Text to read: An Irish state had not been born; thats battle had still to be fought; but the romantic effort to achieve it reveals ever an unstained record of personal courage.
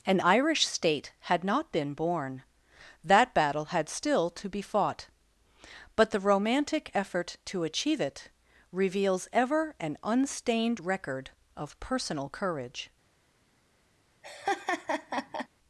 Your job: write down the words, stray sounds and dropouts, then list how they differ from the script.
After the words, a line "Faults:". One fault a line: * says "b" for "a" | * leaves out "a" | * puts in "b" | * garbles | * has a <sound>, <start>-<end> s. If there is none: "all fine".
An Irish state had not been born; that battle had still to be fought; but the romantic effort to achieve it reveals ever an unstained record of personal courage.
Faults:
* says "that" for "thats"
* has a laugh, 14.2-15.5 s